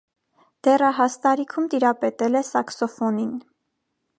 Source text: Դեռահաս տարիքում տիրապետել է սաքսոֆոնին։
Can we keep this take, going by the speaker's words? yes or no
yes